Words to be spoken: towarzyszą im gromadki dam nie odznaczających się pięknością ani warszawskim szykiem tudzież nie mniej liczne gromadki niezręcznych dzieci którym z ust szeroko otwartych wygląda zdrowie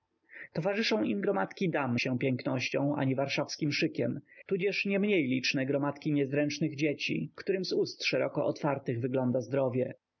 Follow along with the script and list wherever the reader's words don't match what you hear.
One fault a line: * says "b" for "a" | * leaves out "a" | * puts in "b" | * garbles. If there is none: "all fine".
* leaves out "nie odznaczających"